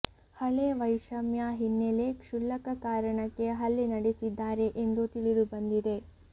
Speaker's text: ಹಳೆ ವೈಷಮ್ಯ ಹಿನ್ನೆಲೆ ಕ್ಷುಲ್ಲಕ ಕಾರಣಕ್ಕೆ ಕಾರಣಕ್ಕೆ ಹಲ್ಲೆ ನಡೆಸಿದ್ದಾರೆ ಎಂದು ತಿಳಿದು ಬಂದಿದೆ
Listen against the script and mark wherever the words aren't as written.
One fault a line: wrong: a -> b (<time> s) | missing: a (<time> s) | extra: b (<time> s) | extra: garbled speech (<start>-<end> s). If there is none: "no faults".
missing: ಕಾರಣಕ್ಕೆ (3.5 s)